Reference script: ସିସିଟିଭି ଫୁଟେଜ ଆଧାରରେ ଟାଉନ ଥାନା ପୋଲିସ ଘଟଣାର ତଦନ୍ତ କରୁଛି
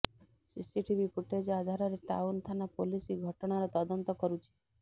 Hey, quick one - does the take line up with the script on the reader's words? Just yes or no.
yes